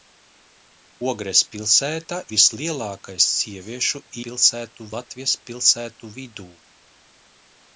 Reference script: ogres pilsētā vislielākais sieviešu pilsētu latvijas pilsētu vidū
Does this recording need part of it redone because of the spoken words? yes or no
no